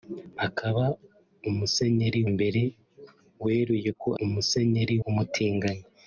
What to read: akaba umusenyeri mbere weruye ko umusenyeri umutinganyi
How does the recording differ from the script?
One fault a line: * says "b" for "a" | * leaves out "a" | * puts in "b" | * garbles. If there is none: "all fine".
all fine